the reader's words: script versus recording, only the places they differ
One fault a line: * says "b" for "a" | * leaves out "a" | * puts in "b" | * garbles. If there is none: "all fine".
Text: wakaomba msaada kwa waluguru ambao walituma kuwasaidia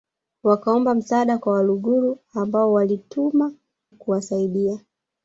all fine